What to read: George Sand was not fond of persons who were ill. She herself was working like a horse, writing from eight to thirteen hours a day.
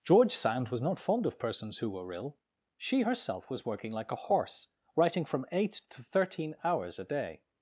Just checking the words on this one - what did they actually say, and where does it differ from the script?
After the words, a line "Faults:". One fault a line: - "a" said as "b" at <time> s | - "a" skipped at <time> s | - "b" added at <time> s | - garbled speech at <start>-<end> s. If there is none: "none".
George Sand was not fond of persons who were ill. She herself was working like a horse, writing from eight to thirteen hours a day.
Faults:
none